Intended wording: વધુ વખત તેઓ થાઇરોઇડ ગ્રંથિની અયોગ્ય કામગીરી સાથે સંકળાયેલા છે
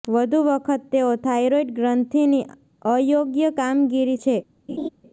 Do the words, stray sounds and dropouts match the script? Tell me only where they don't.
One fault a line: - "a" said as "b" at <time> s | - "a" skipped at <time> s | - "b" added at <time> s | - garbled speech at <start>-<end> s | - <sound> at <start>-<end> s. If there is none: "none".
- "સાથે સંકળાયેલા" skipped at 4.2 s
- laugh at 4.7-4.9 s